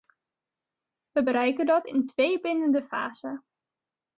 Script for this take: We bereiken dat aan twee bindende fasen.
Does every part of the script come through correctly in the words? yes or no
no